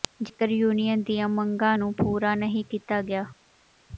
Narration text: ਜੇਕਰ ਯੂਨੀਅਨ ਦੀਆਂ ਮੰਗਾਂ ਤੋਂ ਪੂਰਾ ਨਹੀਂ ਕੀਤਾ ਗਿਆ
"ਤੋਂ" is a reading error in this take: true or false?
true